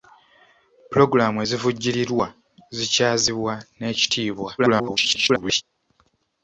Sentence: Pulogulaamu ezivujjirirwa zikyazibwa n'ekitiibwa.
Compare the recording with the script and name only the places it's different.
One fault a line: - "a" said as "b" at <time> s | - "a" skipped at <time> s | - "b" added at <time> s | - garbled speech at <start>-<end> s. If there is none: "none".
- garbled speech at 4.6-5.6 s